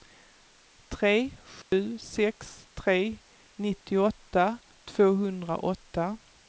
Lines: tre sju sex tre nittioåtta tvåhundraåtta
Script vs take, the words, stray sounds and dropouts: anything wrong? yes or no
yes